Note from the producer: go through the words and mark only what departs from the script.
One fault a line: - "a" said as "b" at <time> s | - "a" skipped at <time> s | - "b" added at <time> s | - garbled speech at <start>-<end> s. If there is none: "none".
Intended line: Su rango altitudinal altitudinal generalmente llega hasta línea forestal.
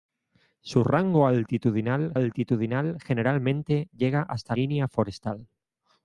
none